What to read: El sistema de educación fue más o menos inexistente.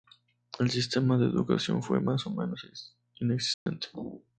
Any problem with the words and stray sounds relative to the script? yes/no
yes